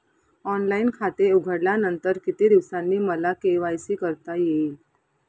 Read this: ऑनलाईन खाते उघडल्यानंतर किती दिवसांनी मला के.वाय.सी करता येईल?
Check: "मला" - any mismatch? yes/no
no